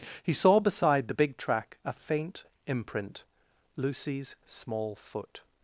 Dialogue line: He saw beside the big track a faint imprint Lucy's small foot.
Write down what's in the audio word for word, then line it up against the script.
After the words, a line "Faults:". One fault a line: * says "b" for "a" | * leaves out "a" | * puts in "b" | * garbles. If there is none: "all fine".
He saw beside the big track a faint imprint Lucy's small foot.
Faults:
all fine